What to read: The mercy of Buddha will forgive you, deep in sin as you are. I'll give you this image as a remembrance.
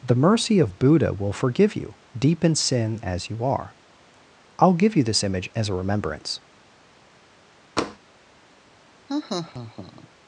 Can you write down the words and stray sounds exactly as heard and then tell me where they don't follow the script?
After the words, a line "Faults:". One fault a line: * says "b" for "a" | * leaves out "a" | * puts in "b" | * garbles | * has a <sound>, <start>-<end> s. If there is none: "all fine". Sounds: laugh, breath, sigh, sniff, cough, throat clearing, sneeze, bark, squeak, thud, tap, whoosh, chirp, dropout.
The mercy of Buddha will forgive you, deep in sin as you are. I'll give you this image as a remembrance.
Faults:
* has a tap, 7.8-8.0 s
* has a laugh, 9.1-10.1 s